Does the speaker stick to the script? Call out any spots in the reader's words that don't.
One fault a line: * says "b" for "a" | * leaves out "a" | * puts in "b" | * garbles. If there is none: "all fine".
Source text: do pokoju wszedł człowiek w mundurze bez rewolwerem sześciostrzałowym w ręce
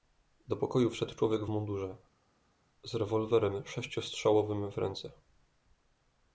* says "z" for "bez"